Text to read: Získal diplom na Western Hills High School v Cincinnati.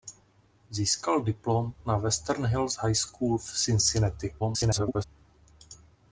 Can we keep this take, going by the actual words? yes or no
no